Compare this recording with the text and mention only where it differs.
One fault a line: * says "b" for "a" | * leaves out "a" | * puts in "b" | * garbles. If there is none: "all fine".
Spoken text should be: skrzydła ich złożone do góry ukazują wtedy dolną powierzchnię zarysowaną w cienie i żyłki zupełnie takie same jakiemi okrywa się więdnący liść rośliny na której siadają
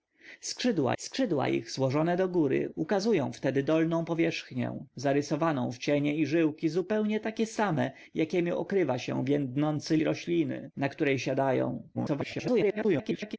* puts in "skrzydła"
* leaves out "liść"
* garbles